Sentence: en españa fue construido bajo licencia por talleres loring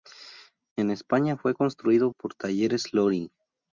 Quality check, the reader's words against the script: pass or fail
fail